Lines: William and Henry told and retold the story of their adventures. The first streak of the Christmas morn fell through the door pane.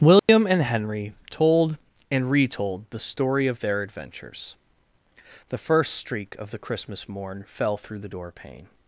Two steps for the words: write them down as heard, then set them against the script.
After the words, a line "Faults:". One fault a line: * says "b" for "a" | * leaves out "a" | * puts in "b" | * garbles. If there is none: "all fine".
William and Henry told and retold the story of their adventures. The first streak of the Christmas morn fell through the door pane.
Faults:
all fine